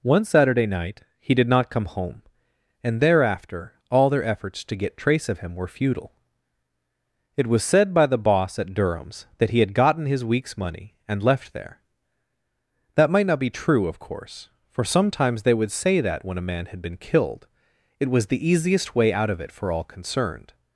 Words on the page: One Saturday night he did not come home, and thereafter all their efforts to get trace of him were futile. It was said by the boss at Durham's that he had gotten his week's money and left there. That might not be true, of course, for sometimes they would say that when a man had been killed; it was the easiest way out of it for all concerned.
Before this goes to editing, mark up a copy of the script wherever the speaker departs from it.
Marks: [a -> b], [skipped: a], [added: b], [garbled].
One Saturday night he did not come home, and thereafter all their efforts to get trace of him were futile. It was said by the boss at Durham's that he had gotten his week's money and left there. That might not be true, of course, for sometimes they would say that when a man had been killed; it was the easiest way out of it for all concerned.